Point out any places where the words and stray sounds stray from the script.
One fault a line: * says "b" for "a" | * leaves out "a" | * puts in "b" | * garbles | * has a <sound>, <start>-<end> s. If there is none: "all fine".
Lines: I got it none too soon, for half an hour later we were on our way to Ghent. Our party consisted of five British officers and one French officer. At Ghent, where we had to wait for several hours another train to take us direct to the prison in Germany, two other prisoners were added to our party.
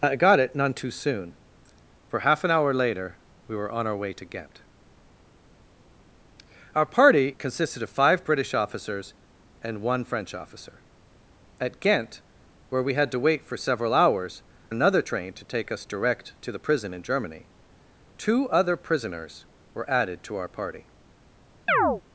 * has a chirp, 21.7-22.0 s